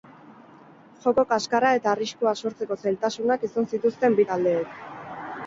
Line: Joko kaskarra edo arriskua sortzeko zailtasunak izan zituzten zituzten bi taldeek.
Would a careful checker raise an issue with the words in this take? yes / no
yes